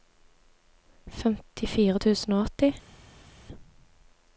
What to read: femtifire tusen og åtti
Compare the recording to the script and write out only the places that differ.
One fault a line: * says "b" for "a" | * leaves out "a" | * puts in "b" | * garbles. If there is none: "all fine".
all fine